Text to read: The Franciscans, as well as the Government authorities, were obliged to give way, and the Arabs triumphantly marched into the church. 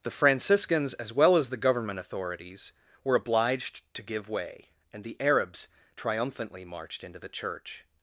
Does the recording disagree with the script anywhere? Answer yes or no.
no